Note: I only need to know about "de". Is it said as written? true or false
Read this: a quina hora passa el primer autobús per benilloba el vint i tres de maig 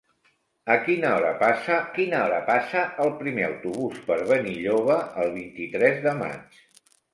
true